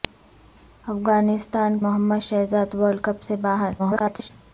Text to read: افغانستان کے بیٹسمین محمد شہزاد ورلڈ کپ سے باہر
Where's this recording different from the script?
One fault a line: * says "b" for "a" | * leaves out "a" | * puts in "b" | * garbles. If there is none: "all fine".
* leaves out "کے بیٹسمین"
* garbles